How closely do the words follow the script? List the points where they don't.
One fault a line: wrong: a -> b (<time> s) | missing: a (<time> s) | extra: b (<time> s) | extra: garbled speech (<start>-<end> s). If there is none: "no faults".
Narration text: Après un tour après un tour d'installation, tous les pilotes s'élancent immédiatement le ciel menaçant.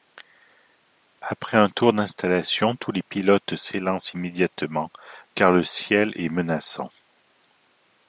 missing: après un tour (1.9 s)
extra: car (5.3 s)
extra: est (6.2 s)